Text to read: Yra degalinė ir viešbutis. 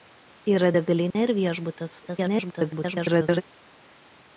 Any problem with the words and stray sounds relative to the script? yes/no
yes